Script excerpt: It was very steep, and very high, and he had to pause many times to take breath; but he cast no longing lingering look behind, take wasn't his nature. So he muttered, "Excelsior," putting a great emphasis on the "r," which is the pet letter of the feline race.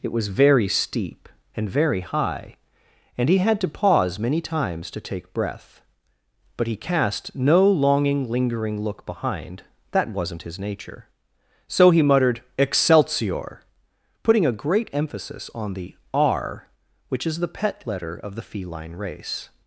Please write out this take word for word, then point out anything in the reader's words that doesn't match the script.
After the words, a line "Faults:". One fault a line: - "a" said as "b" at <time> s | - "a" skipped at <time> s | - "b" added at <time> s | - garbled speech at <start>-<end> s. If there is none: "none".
It was very steep, and very high, and he had to pause many times to take breath; but he cast no longing lingering look behind, that wasn't his nature. So he muttered, "Excelsior," putting a great emphasis on the "r," which is the pet letter of the feline race.
Faults:
- "take" said as "that" at 9.9 s